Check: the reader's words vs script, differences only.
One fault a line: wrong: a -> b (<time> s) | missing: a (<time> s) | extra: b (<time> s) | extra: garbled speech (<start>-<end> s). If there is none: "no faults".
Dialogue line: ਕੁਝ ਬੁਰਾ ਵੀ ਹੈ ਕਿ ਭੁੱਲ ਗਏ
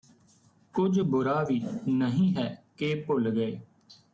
extra: ਨਹੀਂ (1.9 s)